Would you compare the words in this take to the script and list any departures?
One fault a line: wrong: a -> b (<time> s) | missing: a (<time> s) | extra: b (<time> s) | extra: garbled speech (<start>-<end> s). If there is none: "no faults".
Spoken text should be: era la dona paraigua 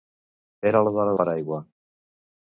no faults